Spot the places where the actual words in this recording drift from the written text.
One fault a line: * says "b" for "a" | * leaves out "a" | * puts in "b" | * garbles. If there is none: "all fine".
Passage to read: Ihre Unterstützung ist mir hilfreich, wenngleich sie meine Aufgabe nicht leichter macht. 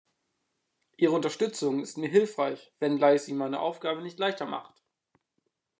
all fine